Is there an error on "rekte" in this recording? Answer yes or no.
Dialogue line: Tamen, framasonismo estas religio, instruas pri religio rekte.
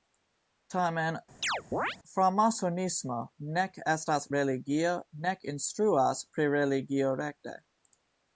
no